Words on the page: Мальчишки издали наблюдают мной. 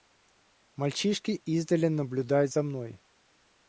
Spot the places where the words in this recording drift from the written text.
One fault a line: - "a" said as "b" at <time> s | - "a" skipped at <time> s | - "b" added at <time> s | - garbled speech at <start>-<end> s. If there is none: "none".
- "за" added at 2.5 s